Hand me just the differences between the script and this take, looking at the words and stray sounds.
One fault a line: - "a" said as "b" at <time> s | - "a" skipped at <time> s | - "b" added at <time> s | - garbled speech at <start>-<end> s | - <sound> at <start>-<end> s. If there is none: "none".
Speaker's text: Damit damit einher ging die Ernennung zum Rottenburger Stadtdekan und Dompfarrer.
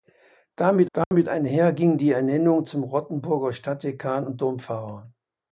- dropout at 1.0-1.1 s